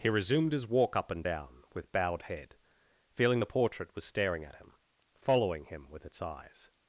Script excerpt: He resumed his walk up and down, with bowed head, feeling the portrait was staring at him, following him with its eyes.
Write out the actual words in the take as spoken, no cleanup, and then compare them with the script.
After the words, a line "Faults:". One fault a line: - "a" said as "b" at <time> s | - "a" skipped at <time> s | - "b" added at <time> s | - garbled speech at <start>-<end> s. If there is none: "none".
He resumed his walk up and down, with bowed head, feeling the portrait was staring at him, following him with its eyes.
Faults:
none